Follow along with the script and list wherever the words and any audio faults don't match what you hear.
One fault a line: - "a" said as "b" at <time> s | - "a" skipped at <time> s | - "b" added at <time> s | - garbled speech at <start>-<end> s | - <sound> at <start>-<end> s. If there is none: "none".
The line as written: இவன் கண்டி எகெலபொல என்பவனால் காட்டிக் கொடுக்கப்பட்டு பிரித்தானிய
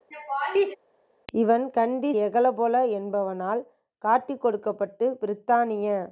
- laugh at 0.1-0.8 s